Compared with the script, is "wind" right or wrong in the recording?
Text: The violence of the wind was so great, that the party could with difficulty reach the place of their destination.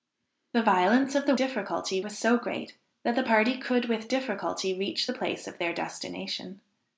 wrong